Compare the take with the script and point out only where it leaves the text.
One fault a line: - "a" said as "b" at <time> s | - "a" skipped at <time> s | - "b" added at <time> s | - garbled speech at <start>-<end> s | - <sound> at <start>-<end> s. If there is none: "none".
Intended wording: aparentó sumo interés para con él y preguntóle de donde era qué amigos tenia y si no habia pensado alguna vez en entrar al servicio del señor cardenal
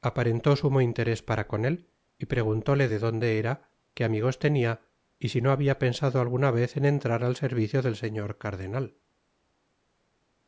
none